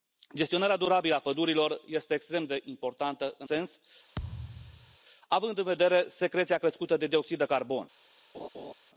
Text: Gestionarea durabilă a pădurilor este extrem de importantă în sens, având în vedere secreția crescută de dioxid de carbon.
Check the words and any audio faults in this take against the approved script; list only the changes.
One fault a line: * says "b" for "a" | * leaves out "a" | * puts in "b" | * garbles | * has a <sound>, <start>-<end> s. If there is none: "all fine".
* has a thud, 4.1-5.0 s
* has a laugh, 8.3-8.7 s